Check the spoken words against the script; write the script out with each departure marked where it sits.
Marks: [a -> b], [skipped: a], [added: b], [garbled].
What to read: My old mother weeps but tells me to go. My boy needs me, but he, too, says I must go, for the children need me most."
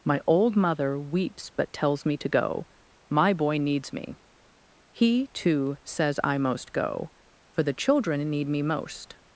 My old mother weeps but tells me to go. My boy needs me, [skipped: but] he, too, says I [must -> most] go, for the children need me most."